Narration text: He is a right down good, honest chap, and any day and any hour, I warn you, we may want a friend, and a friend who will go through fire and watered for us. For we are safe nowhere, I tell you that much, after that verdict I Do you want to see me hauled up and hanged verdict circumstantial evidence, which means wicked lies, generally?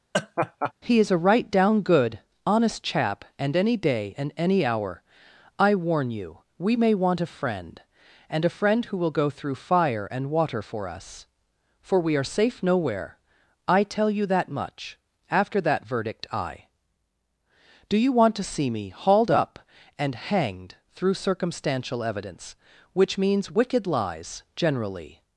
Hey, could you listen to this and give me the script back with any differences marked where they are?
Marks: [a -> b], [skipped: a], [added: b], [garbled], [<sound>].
[laugh] He is a right down good, honest chap, and any day and any hour, I warn you, we may want a friend, and a friend who will go through fire and [watered -> water] for us. For we are safe nowhere, I tell you that much, after that verdict I Do you want to see me hauled up and hanged [verdict -> through] circumstantial evidence, which means wicked lies, generally?